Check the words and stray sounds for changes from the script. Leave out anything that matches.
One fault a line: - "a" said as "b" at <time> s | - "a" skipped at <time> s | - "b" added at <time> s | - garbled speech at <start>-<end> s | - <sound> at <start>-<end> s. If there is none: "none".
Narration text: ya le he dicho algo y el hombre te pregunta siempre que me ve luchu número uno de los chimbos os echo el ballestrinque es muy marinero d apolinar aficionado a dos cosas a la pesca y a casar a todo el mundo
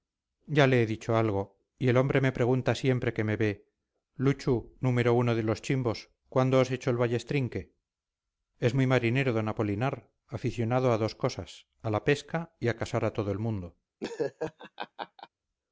- "te" said as "me" at 2.2 s
- "cuándo" added at 6.3 s
- laugh at 14.0-15.3 s